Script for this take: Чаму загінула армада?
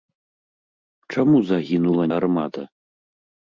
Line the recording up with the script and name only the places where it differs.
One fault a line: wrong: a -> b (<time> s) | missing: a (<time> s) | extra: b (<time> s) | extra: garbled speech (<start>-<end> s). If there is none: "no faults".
no faults